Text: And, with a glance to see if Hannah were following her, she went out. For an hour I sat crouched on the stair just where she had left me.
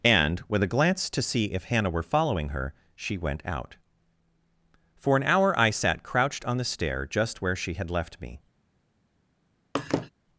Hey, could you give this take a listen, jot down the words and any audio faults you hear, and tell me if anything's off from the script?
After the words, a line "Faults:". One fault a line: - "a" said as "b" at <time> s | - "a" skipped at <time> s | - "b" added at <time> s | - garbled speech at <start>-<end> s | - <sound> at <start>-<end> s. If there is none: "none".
And, with a glance to see if Hannah were following her, she went out. For an hour I sat crouched on the stair just where she had left me.
Faults:
- laugh at 9.7-10.1 s